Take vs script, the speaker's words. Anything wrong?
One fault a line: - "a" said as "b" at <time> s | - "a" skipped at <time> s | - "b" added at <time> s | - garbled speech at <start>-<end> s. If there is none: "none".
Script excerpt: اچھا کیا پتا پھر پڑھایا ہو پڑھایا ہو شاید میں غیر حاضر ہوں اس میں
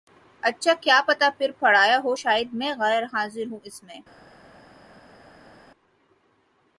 - "پڑھایا ہو" skipped at 2.1 s